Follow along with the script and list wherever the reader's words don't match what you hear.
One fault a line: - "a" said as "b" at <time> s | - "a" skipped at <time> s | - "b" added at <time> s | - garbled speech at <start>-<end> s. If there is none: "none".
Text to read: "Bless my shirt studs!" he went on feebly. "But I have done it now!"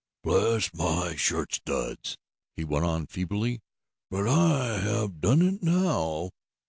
none